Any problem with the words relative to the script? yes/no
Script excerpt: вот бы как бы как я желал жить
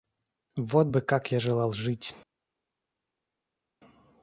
yes